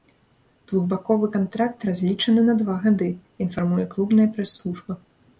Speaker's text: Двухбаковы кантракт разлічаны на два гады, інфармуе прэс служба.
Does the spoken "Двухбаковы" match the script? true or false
true